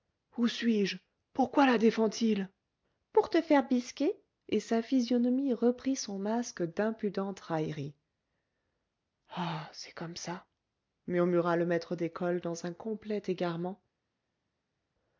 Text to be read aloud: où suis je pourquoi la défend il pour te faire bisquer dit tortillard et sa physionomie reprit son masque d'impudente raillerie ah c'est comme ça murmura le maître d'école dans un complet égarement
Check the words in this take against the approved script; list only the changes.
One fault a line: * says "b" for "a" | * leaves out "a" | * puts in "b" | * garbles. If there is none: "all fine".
* leaves out "dit tortillard"